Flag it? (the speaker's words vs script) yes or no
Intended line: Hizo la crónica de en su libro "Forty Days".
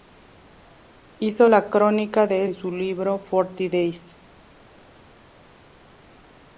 no